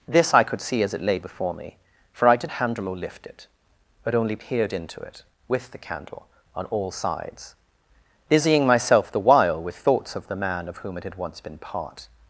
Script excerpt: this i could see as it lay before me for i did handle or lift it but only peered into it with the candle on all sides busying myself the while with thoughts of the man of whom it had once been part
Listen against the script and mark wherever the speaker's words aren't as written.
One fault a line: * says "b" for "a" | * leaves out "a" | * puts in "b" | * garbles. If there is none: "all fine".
all fine